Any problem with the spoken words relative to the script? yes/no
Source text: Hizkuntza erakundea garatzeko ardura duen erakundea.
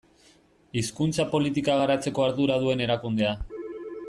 yes